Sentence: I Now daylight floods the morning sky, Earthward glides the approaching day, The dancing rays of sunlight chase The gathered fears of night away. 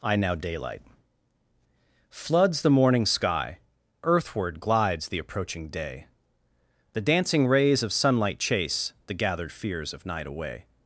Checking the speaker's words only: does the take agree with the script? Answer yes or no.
yes